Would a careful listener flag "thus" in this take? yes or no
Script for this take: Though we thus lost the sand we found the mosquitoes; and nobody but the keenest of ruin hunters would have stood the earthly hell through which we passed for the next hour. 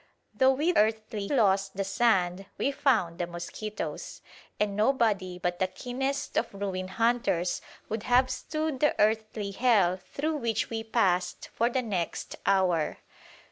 yes